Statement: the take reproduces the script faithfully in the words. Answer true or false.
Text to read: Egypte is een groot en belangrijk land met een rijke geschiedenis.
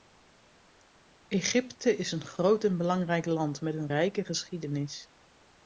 true